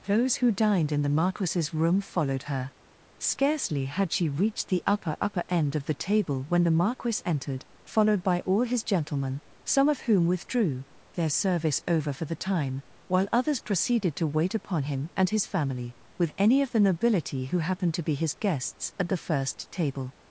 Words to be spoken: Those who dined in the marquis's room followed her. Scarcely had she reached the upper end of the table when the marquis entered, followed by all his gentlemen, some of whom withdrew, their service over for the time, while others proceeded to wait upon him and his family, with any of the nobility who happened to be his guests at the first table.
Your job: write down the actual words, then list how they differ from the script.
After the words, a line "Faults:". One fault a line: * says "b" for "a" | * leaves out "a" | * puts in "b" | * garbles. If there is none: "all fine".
Those who dined in the marquis's room followed her. Scarcely had she reached the upper upper end of the table when the marquis entered, followed by all his gentlemen, some of whom withdrew, their service over for the time, while others proceeded to wait upon him and his family, with any of the nobility who happened to be his guests at the first table.
Faults:
* puts in "upper"